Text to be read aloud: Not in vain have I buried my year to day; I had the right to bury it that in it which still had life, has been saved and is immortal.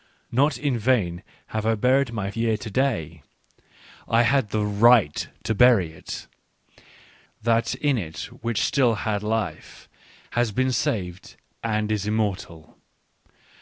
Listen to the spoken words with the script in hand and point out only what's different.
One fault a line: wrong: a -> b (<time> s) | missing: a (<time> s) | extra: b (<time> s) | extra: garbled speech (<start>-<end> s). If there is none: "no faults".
no faults